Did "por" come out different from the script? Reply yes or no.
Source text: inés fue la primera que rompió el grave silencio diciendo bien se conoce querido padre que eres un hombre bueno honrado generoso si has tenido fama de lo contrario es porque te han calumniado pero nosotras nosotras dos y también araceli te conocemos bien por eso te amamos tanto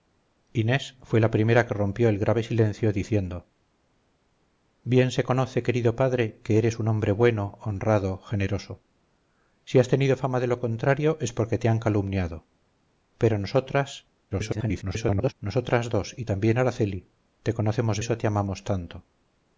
yes